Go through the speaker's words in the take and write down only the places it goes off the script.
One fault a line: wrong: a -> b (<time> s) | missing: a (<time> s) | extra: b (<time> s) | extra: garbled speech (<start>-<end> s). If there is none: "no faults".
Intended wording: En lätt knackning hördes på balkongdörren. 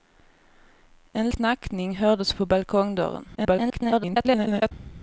missing: lätt (1.3 s)
extra: garbled speech (3.3-4.7 s)